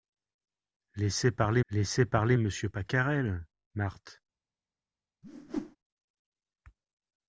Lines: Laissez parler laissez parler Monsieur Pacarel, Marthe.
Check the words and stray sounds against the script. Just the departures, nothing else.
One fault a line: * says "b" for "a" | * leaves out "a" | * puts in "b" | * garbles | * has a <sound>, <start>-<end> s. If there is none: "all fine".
* has a whoosh, 5.2-5.8 s